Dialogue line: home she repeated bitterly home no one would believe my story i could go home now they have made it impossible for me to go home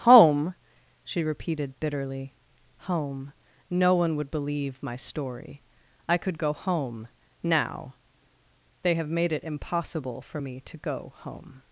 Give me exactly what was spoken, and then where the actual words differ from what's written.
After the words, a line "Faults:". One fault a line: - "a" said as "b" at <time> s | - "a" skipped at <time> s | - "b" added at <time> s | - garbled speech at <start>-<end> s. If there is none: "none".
home she repeated bitterly home no one would believe my story i could go home now they have made it impossible for me to go home
Faults:
none